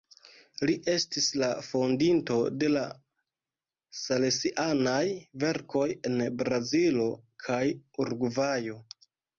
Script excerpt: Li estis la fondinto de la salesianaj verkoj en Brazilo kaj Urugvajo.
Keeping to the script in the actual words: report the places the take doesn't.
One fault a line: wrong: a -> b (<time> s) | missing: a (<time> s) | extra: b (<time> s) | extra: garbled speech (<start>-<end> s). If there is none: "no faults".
no faults